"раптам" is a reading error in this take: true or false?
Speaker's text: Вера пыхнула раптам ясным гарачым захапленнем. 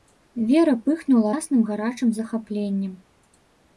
true